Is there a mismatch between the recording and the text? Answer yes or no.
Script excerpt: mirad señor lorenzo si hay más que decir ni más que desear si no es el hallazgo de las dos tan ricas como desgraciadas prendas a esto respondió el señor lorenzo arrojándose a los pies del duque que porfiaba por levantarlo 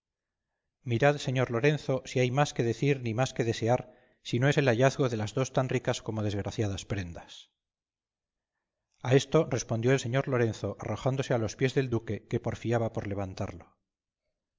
no